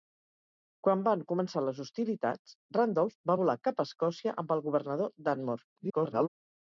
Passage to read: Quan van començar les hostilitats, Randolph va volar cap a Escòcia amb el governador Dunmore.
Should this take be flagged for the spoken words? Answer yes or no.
yes